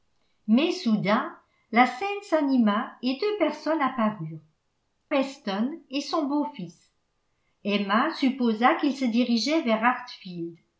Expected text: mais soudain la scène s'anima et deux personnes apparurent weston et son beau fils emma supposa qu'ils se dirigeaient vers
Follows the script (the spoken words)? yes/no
yes